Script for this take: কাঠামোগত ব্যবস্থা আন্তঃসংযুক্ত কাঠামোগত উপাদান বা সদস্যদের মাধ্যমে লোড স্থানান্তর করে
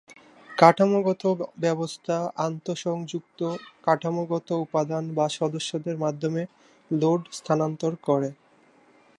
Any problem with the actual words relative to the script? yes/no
no